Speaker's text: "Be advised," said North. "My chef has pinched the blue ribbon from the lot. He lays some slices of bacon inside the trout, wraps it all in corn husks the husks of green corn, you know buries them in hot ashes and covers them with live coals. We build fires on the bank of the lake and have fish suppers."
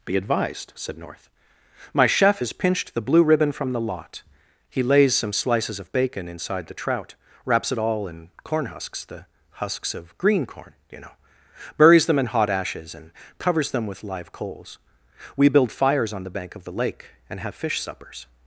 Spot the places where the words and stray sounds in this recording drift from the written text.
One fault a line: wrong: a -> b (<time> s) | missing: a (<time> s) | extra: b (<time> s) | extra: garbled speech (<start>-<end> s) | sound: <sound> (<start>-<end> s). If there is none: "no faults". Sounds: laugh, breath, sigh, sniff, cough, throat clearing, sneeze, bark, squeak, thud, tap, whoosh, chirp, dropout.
no faults